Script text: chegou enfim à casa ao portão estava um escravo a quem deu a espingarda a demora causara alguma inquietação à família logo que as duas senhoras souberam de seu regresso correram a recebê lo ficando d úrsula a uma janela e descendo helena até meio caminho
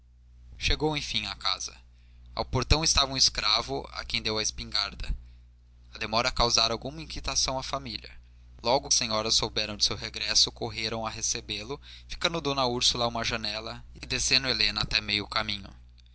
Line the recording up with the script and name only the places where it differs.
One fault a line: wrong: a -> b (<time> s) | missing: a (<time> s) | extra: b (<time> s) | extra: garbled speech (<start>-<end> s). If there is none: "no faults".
missing: que as duas (8.9 s)